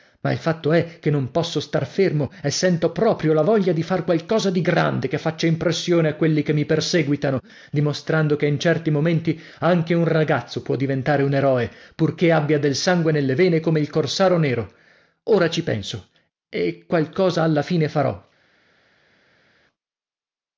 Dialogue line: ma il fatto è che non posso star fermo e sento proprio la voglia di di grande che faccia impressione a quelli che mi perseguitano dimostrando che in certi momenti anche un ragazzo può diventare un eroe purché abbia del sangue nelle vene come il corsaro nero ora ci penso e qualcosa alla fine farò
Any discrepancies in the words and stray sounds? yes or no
yes